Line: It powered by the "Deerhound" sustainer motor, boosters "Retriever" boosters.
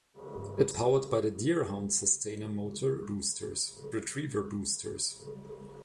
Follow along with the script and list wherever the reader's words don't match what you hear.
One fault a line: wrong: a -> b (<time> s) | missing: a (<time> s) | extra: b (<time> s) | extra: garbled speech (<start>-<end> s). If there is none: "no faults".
no faults